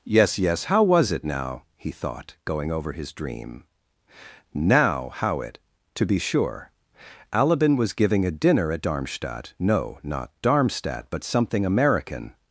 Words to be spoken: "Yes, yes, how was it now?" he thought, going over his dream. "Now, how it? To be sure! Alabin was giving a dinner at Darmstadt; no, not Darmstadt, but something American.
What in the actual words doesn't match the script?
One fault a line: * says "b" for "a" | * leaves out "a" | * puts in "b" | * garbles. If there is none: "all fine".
all fine